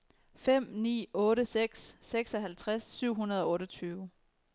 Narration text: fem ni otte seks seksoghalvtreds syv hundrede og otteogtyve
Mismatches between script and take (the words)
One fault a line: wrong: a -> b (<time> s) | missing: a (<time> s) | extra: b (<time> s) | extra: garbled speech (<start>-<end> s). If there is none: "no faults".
no faults